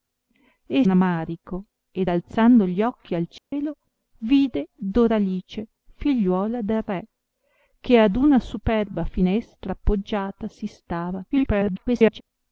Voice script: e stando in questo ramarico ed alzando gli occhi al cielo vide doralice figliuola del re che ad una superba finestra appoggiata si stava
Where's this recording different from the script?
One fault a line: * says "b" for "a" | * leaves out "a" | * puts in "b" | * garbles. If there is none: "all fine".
* leaves out "stando in questo"
* garbles